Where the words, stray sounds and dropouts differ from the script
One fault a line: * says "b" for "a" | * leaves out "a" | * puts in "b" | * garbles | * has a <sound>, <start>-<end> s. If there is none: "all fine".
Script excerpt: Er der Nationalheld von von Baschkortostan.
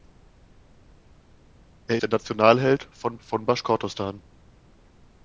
all fine